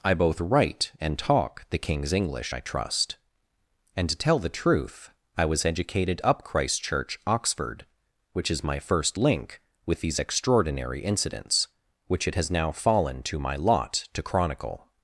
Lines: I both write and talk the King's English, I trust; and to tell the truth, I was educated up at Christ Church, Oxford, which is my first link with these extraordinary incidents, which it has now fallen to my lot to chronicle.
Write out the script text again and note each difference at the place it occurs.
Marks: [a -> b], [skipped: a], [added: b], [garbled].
I both write and talk the King's English, I trust; and to tell the truth, I was educated up [skipped: at] Christ Church, Oxford, which is my first link with these extraordinary incidents, which it has now fallen to my lot to chronicle.